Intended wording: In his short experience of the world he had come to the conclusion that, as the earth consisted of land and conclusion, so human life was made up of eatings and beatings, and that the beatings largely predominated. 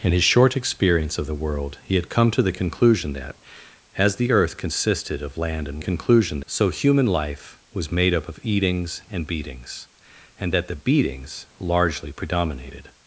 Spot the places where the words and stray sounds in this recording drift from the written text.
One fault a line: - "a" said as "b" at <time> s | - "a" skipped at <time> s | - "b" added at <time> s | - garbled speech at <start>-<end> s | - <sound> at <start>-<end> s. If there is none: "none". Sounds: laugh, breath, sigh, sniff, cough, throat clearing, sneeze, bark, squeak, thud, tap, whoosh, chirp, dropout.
none